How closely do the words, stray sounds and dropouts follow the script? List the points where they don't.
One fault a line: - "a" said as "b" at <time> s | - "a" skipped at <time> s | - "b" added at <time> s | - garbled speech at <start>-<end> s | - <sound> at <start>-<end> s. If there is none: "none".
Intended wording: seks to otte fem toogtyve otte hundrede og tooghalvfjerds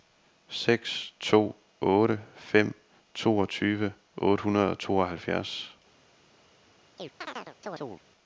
- chirp at 7.0-8.0 s